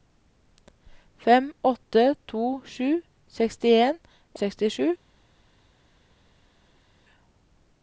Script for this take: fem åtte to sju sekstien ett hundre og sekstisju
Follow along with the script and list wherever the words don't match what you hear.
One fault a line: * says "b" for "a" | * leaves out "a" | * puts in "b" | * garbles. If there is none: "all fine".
* leaves out "ett hundre"